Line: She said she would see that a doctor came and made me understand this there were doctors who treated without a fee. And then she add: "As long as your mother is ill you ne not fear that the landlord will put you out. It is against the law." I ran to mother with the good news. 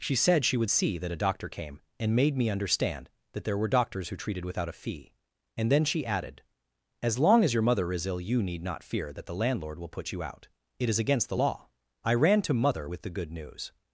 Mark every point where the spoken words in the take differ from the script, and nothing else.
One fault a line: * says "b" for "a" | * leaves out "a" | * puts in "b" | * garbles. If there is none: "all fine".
* says "that" for "this"
* says "added" for "add"
* says "need" for "ne"